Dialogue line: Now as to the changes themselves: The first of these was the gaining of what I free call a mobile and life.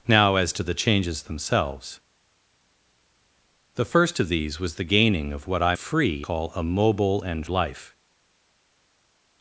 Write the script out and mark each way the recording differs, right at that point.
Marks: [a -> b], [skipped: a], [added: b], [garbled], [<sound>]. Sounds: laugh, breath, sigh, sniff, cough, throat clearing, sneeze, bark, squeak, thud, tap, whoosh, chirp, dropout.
Now as to the changes themselves: The first of these was the gaining of what I free call a mobile and life.